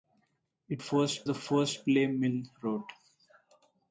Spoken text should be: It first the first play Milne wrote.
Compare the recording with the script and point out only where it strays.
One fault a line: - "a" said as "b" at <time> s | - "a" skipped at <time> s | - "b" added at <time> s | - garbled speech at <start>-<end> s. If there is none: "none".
none